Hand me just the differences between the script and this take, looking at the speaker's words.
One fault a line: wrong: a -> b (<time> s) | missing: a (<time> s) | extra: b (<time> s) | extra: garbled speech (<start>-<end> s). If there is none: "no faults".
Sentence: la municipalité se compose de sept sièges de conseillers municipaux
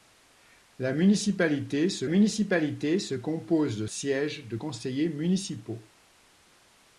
extra: municipalité se (2.1 s)
missing: sept (3.9 s)